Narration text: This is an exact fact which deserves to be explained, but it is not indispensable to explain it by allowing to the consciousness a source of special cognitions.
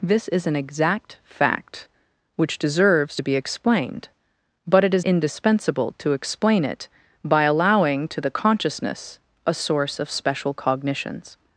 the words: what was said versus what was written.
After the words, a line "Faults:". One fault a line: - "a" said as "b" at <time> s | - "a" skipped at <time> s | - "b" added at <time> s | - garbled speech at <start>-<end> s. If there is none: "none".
This is an exact fact which deserves to be explained, but it is indispensable to explain it by allowing to the consciousness a source of special cognitions.
Faults:
- "not" skipped at 5.0 s